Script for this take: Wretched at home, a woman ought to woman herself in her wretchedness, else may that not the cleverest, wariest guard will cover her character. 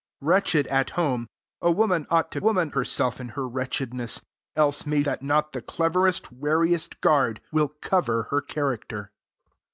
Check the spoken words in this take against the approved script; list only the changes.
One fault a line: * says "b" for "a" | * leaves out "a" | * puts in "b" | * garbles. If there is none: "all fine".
all fine